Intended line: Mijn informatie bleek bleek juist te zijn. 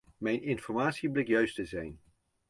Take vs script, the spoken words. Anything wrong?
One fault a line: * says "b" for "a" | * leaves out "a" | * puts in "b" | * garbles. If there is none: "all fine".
* leaves out "bleek"